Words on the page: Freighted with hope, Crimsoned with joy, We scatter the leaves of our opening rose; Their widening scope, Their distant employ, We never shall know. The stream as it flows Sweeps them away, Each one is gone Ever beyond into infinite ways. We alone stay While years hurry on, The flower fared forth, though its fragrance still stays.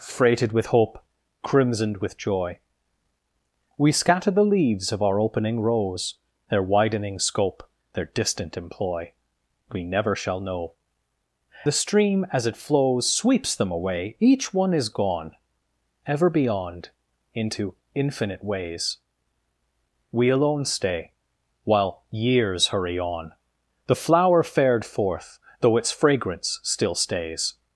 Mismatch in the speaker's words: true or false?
false